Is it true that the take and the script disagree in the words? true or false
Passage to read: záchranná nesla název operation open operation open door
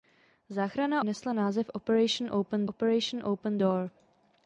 false